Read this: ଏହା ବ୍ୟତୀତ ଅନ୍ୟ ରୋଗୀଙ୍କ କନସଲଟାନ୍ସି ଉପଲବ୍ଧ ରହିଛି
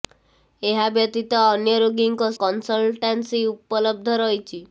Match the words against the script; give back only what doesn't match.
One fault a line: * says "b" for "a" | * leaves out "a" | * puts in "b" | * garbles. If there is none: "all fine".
all fine